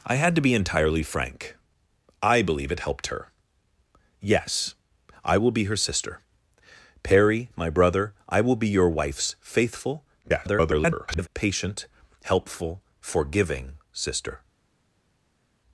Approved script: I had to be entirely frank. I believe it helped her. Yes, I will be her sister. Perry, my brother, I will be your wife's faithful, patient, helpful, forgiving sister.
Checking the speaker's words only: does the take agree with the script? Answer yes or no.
no